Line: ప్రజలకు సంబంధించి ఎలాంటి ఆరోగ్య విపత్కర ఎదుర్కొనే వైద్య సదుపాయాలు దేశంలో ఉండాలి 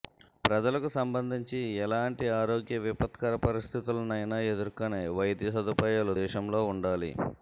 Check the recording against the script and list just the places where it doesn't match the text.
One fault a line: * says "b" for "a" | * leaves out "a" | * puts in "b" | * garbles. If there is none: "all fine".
* puts in "పరిస్థితులనైనా"